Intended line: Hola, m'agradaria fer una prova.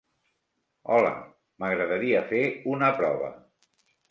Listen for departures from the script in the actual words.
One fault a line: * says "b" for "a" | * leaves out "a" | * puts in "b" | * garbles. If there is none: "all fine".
all fine